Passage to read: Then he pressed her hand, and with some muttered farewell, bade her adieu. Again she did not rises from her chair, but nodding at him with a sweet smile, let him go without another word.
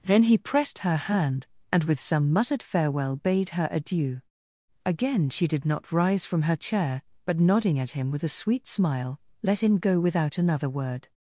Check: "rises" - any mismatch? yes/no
yes